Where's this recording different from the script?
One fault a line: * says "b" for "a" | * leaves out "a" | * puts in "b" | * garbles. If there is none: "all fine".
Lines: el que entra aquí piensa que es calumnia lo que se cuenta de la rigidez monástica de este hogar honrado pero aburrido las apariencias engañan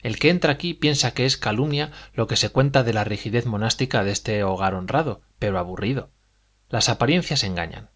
all fine